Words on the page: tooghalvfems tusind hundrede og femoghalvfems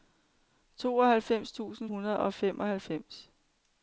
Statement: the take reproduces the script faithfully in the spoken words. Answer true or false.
true